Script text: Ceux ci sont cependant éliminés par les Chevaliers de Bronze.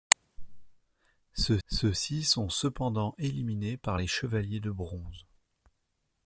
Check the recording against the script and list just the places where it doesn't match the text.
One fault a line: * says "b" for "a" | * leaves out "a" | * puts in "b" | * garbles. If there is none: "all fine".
* puts in "ceux"